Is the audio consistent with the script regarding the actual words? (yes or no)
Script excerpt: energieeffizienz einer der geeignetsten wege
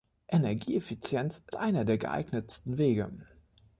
yes